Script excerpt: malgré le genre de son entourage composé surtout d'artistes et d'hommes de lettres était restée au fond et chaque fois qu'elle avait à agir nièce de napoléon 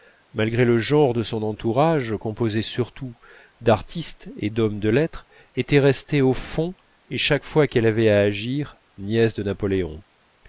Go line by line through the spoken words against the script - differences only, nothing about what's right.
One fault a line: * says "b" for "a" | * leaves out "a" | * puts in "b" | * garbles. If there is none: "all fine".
all fine